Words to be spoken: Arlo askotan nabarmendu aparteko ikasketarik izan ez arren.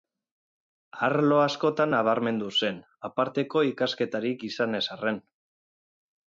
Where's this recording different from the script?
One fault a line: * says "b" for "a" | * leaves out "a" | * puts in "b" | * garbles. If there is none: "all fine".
* puts in "zen"